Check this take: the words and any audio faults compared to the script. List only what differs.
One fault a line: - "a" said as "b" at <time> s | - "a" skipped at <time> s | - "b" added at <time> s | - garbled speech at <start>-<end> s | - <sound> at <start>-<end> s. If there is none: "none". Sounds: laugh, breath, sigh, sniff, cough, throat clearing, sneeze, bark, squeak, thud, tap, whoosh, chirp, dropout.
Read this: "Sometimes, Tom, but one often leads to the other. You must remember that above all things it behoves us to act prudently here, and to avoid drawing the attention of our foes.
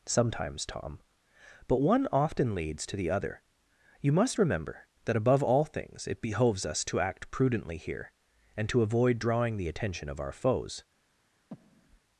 - breath at 11.5-12.0 s